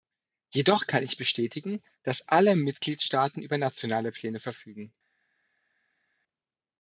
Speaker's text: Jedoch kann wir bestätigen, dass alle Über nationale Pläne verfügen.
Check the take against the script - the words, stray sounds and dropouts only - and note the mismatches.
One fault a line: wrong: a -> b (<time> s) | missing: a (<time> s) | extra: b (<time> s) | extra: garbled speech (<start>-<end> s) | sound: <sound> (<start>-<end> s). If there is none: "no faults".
wrong: wir -> ich (1.0 s)
extra: Mitgliedstaaten (2.6 s)